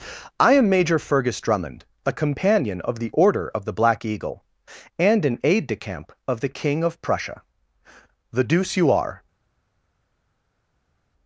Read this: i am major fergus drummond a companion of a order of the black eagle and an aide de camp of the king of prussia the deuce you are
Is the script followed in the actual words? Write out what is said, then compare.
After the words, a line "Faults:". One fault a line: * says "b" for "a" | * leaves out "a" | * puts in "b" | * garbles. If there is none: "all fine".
i am major fergus drummond a companion of the order of the black eagle and an aide de camp of the king of prussia the deuce you are
Faults:
* says "the" for "a"